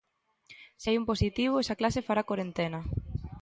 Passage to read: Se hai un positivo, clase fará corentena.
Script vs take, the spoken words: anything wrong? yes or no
yes